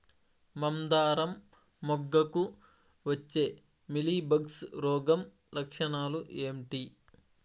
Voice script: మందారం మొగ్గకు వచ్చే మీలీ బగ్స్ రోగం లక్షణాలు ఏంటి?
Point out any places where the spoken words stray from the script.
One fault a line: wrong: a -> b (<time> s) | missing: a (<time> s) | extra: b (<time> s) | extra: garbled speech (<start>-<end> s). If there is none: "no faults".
no faults